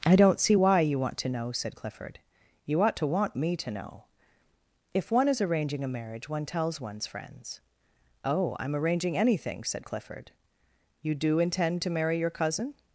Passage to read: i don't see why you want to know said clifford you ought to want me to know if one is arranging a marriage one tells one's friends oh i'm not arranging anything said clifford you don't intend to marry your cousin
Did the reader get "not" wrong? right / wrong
wrong